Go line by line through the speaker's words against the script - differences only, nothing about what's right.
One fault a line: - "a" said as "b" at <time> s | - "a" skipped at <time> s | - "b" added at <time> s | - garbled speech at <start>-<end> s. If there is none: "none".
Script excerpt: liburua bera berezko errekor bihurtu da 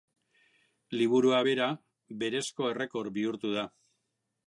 none